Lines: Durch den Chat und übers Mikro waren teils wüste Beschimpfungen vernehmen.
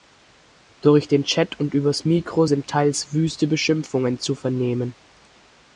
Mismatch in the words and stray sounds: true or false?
true